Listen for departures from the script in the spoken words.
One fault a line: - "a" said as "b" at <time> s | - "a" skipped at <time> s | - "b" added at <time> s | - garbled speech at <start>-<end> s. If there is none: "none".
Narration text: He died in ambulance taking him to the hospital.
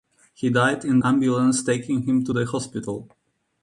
none